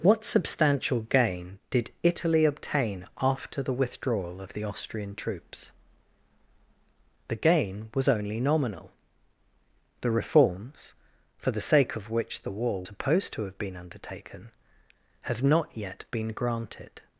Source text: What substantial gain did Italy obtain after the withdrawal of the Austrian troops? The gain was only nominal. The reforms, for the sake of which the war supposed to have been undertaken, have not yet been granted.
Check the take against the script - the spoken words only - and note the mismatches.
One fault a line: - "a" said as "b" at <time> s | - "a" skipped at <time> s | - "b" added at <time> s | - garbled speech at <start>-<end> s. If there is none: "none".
none